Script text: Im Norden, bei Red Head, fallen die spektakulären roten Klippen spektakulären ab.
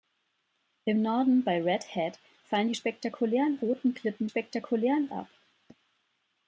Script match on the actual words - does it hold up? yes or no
yes